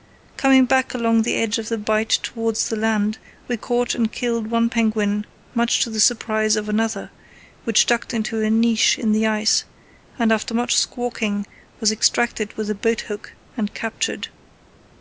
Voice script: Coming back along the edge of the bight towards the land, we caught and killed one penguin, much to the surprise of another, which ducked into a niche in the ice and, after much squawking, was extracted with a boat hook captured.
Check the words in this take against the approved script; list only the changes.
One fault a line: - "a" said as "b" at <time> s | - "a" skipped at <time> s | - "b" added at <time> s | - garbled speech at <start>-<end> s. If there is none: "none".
- "and" added at 13.6 s